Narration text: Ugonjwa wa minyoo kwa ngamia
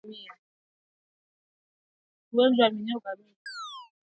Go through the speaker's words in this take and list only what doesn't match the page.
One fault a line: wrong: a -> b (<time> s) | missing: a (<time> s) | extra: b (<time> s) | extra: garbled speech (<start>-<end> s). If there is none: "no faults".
missing: kwa (3.0 s)